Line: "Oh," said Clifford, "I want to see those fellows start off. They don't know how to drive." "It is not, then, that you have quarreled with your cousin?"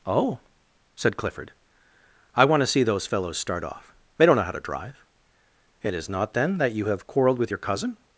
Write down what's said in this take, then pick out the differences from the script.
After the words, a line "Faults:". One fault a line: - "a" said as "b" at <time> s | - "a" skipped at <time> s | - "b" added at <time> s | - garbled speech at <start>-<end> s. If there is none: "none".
"Oh," said Clifford, "I want to see those fellows start off. They don't know how to drive." "It is not, then, that you have quarreled with your cousin?"
Faults:
none